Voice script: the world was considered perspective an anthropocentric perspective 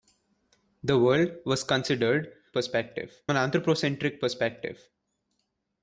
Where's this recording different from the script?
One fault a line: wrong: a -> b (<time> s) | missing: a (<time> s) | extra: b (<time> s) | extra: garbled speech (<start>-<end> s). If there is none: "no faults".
no faults